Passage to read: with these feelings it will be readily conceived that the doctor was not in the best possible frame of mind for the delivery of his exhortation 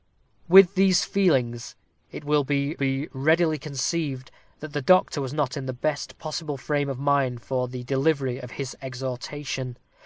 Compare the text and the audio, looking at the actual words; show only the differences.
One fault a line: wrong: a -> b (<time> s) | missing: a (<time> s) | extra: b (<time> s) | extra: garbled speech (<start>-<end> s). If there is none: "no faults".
extra: be (2.7 s)